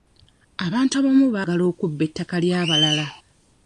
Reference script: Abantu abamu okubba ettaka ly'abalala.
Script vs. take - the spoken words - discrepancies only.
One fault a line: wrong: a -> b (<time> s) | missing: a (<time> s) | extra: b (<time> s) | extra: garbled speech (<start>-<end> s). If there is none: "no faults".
extra: baagala (1.3 s)